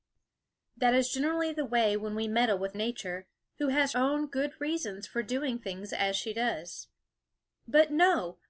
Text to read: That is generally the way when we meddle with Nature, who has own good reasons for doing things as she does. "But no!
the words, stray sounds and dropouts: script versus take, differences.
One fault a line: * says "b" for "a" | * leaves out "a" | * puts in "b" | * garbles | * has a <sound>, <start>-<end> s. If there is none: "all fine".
all fine